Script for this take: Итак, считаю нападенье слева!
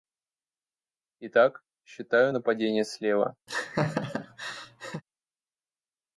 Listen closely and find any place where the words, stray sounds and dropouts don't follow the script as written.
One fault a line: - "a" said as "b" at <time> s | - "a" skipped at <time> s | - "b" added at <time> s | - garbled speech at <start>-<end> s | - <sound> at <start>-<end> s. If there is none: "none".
- laugh at 3.5-5.0 s